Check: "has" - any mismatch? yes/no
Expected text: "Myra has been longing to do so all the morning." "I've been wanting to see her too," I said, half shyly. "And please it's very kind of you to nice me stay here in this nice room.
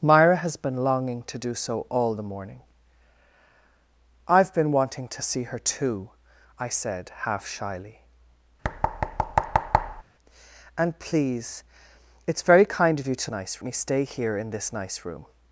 no